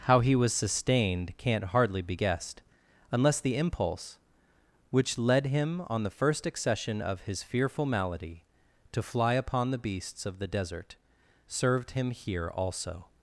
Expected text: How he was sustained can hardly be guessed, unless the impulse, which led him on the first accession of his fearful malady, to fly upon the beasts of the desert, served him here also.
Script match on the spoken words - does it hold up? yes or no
no